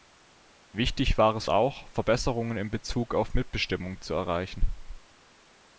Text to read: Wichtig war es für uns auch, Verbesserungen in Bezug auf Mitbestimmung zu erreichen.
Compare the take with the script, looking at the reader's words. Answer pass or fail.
fail